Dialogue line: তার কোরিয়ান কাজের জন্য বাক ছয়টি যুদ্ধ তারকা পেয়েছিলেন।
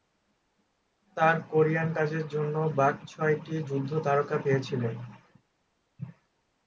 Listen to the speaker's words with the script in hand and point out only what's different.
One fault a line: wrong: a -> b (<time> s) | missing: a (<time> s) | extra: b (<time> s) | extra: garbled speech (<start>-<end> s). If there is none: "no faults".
no faults